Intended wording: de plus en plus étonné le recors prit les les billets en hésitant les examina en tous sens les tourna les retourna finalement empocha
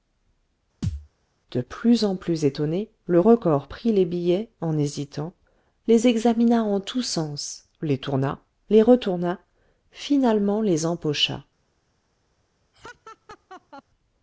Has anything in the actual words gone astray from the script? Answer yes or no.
yes